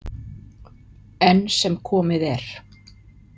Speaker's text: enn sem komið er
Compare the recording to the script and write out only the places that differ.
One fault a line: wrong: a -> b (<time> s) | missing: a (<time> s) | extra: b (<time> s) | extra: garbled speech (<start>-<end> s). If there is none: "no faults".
no faults